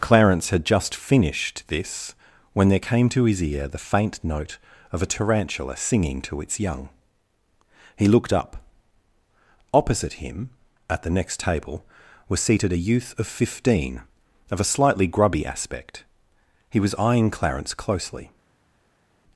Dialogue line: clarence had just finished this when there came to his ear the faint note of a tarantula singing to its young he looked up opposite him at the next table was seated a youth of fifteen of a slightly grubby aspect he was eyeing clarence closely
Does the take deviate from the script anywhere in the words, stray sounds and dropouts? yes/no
no